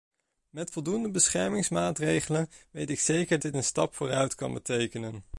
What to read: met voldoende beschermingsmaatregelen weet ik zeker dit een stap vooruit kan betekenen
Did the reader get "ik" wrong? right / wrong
right